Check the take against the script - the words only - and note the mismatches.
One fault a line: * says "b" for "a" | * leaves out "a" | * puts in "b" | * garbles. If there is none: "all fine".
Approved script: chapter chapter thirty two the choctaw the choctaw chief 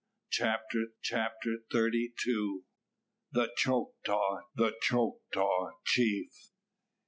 all fine